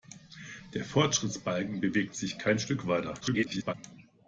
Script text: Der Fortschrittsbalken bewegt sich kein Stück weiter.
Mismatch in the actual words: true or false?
true